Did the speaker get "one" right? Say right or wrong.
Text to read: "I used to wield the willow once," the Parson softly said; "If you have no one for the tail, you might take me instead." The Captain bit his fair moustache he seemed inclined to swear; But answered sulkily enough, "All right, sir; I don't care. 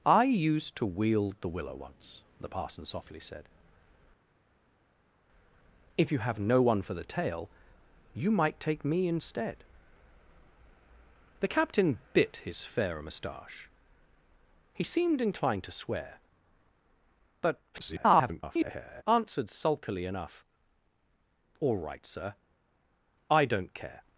right